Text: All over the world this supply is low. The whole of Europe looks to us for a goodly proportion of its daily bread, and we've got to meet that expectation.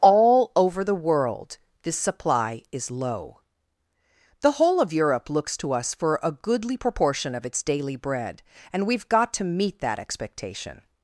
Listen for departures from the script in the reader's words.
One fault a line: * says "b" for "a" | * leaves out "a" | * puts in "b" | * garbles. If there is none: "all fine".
all fine